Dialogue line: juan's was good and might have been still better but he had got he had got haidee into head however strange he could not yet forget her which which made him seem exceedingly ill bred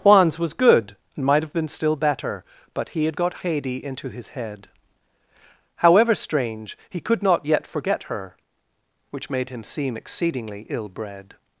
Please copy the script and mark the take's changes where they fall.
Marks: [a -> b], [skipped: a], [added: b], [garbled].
juan's was good and might have been still better but he had got [skipped: he had got] haidee into [added: his] head however strange he could not yet forget her which [skipped: which] made him seem exceedingly ill bred